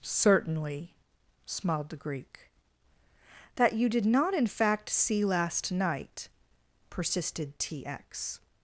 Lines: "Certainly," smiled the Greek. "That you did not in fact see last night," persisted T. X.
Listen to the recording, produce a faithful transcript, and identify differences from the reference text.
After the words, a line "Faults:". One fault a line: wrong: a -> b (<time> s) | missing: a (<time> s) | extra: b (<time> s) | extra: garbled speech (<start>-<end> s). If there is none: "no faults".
"Certainly," smiled the Greek. "That you did not in fact see last night," persisted T. X.
Faults:
no faults